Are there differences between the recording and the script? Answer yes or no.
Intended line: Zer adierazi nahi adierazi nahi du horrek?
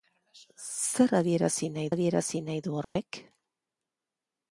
no